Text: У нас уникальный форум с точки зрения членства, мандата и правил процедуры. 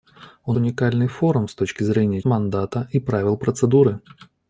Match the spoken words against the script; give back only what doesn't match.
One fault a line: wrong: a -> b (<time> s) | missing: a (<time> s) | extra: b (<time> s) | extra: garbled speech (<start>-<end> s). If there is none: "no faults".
missing: нас (0.5 s)
missing: членства (2.2 s)